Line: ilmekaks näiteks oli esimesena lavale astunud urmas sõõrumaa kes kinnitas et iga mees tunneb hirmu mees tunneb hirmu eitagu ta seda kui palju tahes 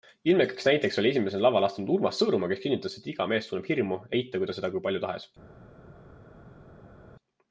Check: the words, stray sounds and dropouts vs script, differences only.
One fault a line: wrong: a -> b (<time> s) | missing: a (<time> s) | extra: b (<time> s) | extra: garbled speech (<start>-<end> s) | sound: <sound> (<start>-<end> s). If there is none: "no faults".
missing: mees tunneb hirmu (4.0 s)